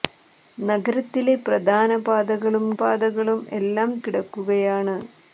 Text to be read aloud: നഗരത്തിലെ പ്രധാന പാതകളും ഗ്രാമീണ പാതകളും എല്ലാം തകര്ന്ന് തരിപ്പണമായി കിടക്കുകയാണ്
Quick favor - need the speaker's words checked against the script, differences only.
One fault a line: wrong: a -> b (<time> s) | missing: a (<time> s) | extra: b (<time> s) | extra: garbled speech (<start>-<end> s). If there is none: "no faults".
missing: ഗ്രാമീണ (2.6 s)
missing: തകര്ന്ന് തരിപ്പണമായി (3.9 s)